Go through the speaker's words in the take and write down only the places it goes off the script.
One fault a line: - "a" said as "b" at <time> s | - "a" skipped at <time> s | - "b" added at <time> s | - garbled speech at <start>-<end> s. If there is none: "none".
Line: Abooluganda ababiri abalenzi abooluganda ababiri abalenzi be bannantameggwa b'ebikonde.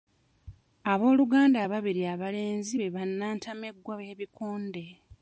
- "abooluganda ababiri abalenzi" skipped at 2.8 s